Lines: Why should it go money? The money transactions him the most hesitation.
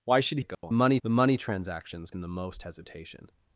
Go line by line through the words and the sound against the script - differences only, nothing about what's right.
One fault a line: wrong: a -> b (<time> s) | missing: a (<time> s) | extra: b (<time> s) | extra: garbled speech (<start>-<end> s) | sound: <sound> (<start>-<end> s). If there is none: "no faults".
sound: dropout (0.5-0.6 s)